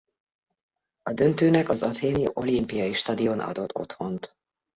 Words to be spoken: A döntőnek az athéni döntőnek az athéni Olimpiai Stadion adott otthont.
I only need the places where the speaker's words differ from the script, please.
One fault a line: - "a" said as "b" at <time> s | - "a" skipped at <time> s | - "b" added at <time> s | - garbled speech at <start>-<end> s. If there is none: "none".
- "döntőnek az athéni" skipped at 2.3 s